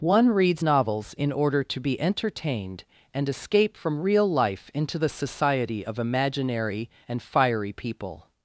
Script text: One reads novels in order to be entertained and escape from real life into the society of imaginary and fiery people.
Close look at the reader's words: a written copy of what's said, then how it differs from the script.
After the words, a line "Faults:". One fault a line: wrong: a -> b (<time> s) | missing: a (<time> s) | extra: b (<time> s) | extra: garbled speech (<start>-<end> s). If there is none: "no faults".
One reads novels in order to be entertained and escape from real life into the society of imaginary and fiery people.
Faults:
no faults